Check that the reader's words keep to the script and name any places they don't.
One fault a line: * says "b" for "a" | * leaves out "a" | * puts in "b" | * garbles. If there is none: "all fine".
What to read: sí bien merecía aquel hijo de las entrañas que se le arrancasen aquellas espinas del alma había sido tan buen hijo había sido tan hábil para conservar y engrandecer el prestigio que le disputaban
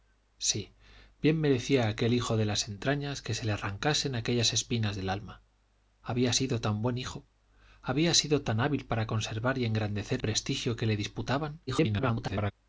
* leaves out "el"
* garbles